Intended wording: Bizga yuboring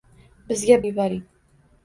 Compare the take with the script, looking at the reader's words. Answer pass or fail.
pass